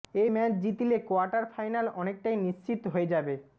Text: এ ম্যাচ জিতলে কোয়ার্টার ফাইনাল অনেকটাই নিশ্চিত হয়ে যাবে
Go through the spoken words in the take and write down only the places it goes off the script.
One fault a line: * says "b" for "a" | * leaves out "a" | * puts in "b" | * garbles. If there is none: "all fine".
all fine